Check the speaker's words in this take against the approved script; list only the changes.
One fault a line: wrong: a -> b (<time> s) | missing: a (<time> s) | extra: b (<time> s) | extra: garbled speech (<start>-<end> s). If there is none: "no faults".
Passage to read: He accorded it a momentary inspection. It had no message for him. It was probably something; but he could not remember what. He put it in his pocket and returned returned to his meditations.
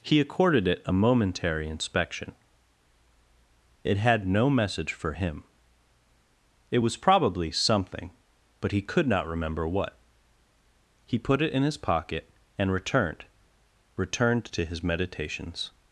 no faults